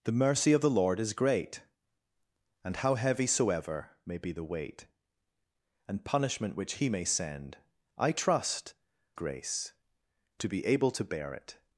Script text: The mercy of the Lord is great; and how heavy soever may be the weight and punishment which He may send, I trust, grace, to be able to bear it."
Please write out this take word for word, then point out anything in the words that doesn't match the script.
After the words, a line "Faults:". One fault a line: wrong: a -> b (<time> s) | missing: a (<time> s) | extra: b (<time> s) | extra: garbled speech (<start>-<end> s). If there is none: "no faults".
The mercy of the Lord is great; and how heavy soever may be the weight and punishment which He may send, I trust, grace, to be able to bear it."
Faults:
no faults